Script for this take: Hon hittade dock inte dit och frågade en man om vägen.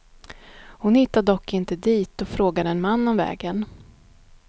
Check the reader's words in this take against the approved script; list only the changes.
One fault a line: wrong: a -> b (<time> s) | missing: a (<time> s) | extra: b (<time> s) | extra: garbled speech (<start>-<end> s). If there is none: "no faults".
no faults